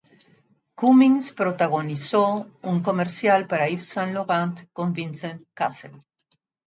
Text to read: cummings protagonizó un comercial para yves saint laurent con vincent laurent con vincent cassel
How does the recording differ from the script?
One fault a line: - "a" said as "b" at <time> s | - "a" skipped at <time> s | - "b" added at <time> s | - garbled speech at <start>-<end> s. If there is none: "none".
- "laurent con vincent" skipped at 5.4 s